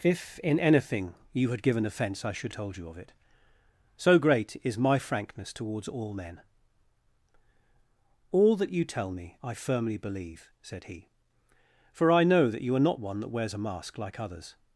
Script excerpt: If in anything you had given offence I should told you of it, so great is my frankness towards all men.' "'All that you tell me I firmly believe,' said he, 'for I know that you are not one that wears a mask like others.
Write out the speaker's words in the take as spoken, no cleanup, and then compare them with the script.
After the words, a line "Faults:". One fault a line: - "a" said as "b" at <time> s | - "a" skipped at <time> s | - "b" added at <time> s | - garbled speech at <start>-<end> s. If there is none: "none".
If in anything you had given offence I should told you of it, so great is my frankness towards all men.' "'All that you tell me I firmly believe,' said he, 'for I know that you are not one that wears a mask like others.
Faults:
none